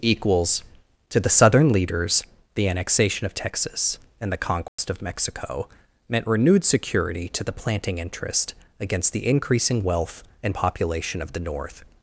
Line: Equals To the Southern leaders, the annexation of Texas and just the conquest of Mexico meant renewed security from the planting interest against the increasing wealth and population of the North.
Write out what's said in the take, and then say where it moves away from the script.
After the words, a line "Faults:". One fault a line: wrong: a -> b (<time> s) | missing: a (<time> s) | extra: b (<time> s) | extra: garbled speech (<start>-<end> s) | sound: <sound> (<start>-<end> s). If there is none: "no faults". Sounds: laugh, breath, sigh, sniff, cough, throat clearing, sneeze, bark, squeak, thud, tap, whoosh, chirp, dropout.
Equals To the Southern leaders, the annexation of Texas and the conquest of Mexico meant renewed security to the planting interest against the increasing wealth and population of the North.
Faults:
missing: just (4.3 s)
sound: dropout (4.7-4.8 s)
wrong: from -> to (7.3 s)